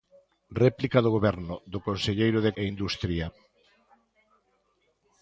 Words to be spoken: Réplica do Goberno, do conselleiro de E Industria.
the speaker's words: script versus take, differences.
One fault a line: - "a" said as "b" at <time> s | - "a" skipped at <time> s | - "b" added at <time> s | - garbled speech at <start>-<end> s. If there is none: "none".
none